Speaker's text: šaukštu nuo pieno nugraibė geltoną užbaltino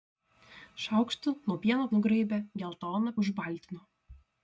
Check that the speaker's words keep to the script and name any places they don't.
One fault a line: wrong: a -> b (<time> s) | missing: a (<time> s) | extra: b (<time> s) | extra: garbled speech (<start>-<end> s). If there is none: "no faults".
no faults